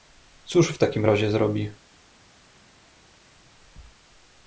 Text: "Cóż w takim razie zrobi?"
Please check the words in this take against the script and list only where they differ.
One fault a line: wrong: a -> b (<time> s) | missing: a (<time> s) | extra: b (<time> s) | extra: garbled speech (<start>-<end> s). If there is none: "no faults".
no faults